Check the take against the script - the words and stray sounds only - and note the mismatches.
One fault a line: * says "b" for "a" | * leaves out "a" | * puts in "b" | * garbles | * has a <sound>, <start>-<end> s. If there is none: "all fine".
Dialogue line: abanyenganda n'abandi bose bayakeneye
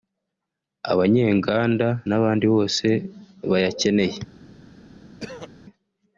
* has a throat clearing, 5.2-5.5 s